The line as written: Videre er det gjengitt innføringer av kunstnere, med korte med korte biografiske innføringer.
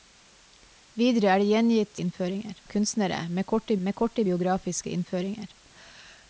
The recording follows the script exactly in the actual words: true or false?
true